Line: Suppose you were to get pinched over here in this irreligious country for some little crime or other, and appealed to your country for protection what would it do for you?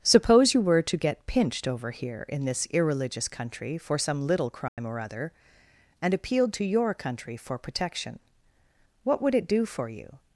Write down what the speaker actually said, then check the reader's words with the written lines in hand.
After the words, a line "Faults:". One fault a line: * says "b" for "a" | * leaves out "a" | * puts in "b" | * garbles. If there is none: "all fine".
Suppose you were to get pinched over here in this irreligious country for some little crime or other, and appealed to your country for protection what would it do for you?
Faults:
all fine